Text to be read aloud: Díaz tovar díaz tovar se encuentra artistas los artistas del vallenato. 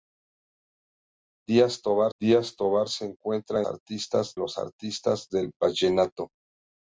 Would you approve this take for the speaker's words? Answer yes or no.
yes